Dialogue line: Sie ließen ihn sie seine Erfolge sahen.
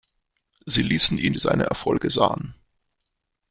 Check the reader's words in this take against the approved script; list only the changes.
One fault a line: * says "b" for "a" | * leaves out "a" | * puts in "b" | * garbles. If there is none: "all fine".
all fine